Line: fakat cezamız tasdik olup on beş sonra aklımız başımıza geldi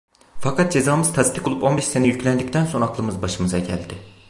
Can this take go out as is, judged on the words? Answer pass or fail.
fail